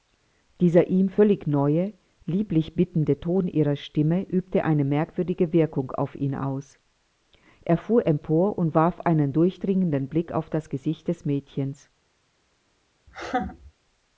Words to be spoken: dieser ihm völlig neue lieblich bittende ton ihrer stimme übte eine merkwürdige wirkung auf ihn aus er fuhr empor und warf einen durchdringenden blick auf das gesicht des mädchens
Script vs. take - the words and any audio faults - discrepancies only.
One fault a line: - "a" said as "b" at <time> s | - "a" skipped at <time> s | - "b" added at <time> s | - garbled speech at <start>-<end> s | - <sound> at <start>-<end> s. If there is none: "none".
- laugh at 13.1-13.7 s